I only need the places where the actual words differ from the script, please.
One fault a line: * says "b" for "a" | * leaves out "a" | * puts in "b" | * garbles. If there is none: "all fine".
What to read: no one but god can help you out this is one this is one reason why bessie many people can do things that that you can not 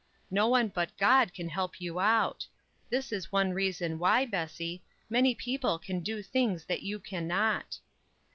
* leaves out "this is one"
* leaves out "that"